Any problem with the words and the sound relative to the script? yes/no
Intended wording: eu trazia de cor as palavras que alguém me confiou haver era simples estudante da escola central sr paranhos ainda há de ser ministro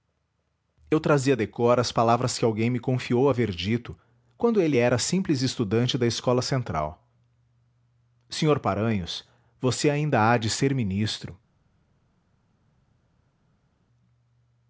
yes